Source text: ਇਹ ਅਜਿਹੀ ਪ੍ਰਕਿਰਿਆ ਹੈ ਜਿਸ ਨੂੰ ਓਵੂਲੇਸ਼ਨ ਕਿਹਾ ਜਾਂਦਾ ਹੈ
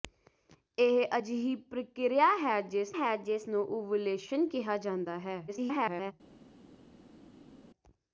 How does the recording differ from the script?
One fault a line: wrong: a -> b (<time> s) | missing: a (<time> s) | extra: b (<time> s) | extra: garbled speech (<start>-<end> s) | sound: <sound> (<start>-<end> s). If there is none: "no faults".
extra: ਹੈ ਜਿਸ (2.9 s)
extra: garbled speech (5.5-6.1 s)